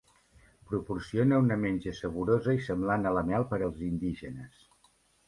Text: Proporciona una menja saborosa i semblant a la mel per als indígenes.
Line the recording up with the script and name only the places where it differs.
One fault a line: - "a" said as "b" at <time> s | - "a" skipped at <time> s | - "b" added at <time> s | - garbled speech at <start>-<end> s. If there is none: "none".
none